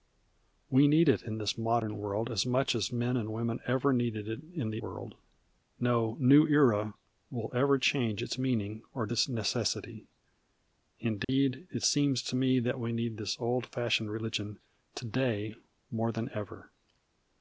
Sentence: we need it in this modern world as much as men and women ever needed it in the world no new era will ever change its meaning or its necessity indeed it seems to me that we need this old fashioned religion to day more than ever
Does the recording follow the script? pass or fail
pass